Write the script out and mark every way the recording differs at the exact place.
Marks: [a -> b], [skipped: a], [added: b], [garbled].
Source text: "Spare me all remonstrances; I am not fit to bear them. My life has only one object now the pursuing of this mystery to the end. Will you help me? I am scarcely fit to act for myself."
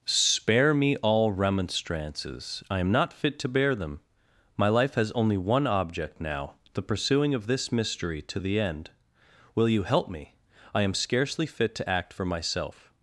"Spare me all remonstrances; I am not fit to bear them. My life has only one object now the pursuing of this mystery to the end. Will you help me? I am scarcely fit to act for myself."